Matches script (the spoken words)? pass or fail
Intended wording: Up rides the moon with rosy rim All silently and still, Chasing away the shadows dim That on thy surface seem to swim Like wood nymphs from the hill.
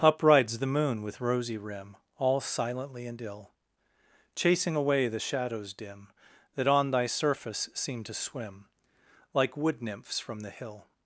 fail